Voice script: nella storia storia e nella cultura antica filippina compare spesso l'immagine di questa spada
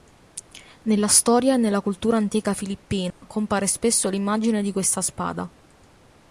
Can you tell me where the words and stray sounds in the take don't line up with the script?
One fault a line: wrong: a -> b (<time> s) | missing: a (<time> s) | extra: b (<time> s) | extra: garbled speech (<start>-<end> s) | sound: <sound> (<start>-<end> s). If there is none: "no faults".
missing: storia (1.5 s)
sound: dropout (3.1-3.2 s)